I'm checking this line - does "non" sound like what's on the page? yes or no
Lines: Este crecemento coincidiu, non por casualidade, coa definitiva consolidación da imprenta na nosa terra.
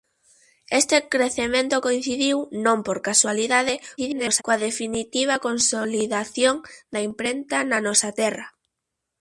yes